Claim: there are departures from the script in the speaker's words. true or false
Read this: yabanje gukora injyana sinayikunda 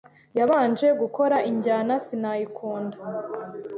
false